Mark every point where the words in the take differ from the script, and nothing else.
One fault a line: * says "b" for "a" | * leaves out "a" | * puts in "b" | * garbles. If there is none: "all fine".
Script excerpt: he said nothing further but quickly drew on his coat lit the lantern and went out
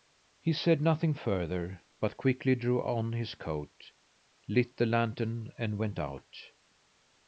all fine